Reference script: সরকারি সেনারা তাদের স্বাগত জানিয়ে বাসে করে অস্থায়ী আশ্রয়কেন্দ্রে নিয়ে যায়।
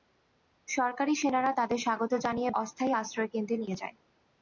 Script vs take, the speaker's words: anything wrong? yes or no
yes